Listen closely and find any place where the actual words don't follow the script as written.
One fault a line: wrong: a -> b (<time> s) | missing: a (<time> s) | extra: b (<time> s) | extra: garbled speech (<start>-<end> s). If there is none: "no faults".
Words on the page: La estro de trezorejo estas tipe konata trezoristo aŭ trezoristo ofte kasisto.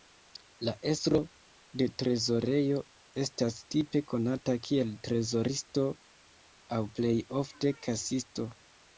extra: kiel (4.7 s)
wrong: trezoristo -> plej (7.0 s)